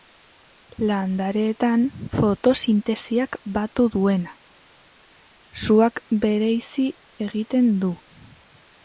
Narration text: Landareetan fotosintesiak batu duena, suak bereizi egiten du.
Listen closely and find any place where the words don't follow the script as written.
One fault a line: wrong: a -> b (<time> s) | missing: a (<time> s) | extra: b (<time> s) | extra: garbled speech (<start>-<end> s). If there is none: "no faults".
no faults